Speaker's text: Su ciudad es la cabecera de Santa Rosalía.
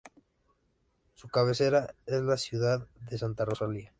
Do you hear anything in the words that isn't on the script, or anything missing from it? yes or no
yes